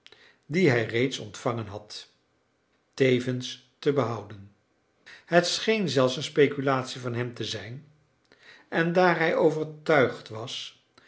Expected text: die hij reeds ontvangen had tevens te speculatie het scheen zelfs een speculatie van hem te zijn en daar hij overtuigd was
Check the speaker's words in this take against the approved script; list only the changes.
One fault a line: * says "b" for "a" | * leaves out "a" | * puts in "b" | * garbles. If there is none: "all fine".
* says "behouden" for "speculatie"